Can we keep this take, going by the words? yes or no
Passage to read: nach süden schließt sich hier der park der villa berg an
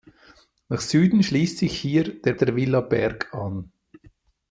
no